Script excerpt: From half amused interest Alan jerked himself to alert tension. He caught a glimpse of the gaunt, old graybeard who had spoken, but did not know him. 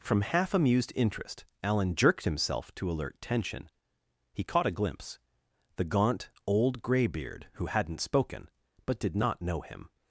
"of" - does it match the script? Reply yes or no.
no